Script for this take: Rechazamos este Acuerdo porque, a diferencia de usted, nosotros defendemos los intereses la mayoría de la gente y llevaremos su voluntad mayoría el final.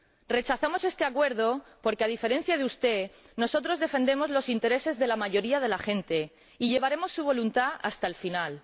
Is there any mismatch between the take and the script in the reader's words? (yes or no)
yes